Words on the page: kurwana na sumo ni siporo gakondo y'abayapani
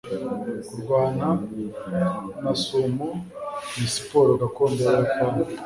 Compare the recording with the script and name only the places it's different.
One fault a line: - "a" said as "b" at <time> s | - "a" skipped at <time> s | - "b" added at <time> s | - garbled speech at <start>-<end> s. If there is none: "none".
none